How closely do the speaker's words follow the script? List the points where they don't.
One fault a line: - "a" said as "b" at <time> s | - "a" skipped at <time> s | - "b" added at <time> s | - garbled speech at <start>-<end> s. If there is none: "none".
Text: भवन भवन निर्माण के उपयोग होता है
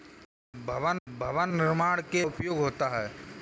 none